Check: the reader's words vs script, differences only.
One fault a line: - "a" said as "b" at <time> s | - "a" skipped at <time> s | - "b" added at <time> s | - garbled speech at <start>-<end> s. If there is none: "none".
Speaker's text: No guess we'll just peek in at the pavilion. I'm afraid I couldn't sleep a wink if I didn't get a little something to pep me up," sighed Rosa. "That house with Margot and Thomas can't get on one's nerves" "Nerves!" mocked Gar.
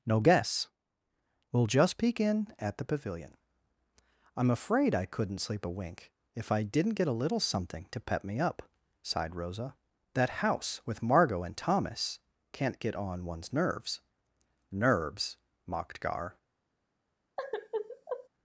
none